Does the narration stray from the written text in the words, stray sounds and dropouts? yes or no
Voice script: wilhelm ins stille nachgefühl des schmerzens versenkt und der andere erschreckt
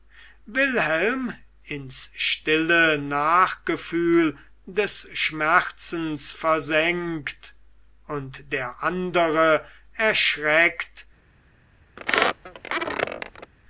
yes